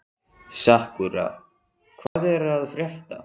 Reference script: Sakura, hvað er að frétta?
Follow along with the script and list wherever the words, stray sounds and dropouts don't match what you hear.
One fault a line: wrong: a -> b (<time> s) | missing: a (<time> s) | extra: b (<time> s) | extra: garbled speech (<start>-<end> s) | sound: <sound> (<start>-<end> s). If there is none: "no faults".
sound: dropout (2.1-2.2 s)